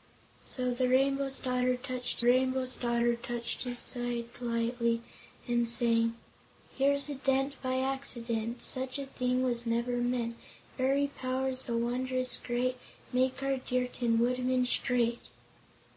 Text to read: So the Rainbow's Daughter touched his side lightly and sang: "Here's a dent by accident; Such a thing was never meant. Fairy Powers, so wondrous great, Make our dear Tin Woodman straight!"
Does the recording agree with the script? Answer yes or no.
no